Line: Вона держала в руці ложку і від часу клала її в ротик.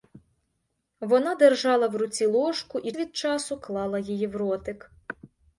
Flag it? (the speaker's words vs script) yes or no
no